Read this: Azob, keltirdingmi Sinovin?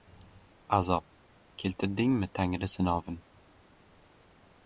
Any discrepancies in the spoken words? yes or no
yes